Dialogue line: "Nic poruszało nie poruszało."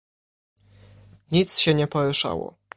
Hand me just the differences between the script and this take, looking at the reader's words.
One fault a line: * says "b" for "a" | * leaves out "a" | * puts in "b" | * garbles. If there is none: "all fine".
* says "się" for "poruszało"